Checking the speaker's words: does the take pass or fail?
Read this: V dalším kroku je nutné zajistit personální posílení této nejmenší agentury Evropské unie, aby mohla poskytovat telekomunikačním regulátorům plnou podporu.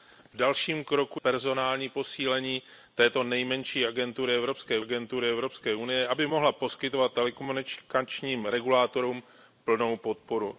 fail